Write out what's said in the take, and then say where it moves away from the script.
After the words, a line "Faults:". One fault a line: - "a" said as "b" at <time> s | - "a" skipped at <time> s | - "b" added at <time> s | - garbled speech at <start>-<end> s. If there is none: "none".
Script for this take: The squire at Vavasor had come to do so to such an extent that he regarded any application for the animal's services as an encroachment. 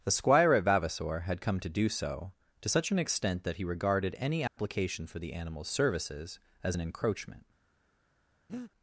The squire at Vavasor had come to do so to such an extent that he regarded any application for the animal's services as an encroachment.
Faults:
none